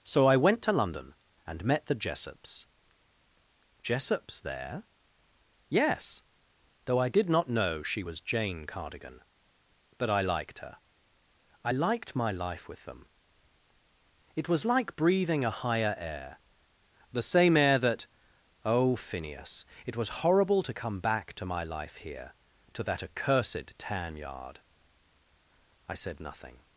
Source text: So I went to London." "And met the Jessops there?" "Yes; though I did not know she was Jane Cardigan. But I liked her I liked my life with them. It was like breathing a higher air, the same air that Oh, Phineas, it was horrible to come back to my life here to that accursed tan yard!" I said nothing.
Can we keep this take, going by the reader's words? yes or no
no